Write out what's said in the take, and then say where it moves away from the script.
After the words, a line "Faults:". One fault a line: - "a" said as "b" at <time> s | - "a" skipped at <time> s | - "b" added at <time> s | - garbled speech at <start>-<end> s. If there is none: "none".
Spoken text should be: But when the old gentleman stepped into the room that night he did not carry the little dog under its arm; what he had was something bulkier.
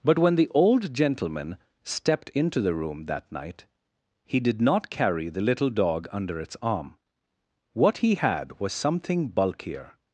But when the old gentleman stepped into the room that night he did not carry the little dog under its arm; what he had was something bulkier.
Faults:
none